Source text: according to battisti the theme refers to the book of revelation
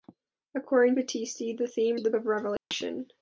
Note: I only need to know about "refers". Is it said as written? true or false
false